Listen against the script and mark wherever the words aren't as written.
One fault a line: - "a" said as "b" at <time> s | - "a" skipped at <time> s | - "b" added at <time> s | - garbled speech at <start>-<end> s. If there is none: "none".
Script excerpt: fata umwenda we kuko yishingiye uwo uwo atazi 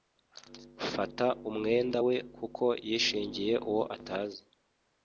- "uwo" skipped at 3.8 s